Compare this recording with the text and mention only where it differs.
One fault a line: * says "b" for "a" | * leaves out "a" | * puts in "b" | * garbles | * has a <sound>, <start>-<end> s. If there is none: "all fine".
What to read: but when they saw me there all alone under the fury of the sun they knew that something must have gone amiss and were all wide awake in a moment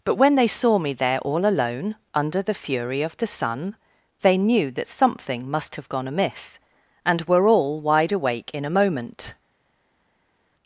all fine